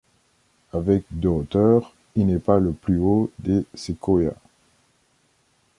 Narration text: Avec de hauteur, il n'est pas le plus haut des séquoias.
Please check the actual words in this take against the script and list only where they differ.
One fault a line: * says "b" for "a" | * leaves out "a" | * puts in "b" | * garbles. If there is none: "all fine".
all fine